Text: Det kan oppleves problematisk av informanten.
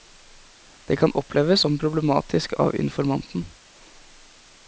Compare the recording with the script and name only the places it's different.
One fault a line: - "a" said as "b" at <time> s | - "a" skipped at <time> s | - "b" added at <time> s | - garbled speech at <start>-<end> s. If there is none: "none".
- "som" added at 1.6 s